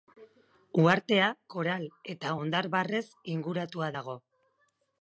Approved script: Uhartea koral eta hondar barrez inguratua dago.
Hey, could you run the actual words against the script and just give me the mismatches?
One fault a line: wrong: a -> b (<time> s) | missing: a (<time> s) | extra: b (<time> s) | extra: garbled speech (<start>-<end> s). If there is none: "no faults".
no faults